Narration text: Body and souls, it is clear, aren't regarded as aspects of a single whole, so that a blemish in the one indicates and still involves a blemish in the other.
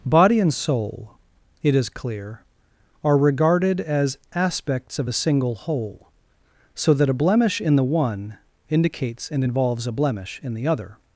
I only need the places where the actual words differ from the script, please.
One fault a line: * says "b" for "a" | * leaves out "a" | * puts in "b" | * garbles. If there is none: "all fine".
* says "soul" for "souls"
* says "are" for "aren't"
* leaves out "still"